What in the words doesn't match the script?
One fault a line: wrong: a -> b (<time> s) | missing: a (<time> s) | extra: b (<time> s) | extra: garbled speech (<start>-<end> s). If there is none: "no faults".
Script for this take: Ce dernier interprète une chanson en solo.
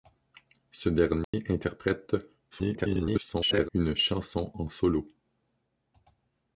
extra: garbled speech (2.5-3.7 s)